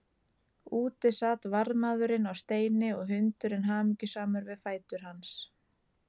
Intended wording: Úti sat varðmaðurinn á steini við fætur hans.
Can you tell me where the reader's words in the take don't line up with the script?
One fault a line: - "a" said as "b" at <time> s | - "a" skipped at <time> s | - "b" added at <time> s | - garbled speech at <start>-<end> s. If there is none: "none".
- "og hundurinn hamingjusamur" added at 3.0 s